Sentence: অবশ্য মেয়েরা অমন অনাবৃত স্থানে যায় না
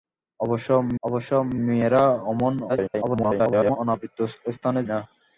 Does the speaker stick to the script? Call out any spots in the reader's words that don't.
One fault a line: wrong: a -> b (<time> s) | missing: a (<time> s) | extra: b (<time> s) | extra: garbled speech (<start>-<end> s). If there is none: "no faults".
extra: অবশ্য (1.0 s)
extra: garbled speech (2.7-3.8 s)
missing: যায় (4.8 s)